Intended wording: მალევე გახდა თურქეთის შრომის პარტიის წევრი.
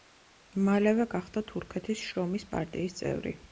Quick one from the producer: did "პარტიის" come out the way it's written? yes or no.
yes